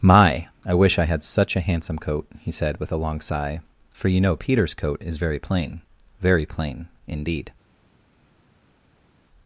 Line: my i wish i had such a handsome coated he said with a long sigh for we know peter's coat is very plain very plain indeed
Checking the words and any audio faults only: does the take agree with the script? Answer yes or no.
no